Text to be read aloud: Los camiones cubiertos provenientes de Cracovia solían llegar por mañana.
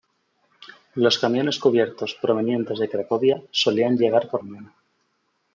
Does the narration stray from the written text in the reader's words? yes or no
no